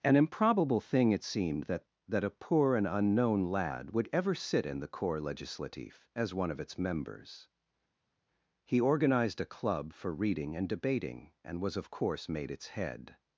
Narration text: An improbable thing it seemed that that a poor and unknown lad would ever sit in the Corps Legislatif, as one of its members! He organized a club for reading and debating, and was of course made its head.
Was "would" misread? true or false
false